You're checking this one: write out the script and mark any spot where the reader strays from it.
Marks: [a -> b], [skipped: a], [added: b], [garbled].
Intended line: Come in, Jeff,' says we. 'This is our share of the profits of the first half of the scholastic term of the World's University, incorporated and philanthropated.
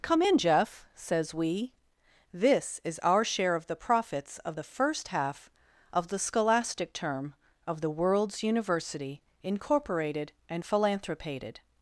Come in, Jeff,' says we. 'This is our share of the profits of the first half of the scholastic term of the World's University, incorporated and philanthropated.